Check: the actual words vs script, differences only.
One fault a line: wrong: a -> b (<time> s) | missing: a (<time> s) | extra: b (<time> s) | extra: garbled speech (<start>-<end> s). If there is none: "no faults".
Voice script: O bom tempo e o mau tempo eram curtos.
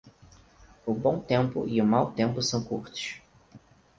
wrong: eram -> são (2.4 s)